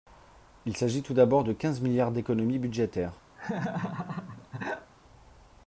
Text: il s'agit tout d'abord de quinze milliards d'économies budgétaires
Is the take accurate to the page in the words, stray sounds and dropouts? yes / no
no